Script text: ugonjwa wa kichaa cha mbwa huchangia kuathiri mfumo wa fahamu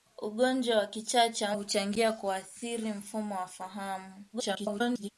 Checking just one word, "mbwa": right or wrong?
wrong